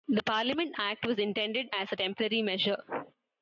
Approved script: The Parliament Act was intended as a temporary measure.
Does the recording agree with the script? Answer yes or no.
yes